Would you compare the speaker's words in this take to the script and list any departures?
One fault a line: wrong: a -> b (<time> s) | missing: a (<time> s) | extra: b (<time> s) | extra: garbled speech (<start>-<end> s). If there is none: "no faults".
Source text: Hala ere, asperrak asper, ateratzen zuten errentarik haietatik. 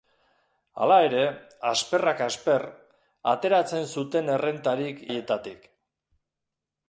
no faults